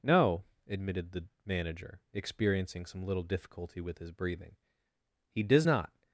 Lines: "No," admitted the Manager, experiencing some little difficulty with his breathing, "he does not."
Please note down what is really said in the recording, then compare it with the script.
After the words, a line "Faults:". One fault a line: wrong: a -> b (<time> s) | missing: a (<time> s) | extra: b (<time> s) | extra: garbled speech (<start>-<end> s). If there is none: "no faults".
"No," admitted the Manager, experiencing some little difficulty with his breathing, "he does not."
Faults:
no faults